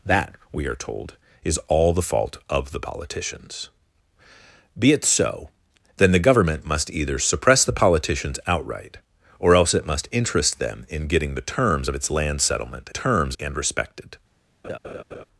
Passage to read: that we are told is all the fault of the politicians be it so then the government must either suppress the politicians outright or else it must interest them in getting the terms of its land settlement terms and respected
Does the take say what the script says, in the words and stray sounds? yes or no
no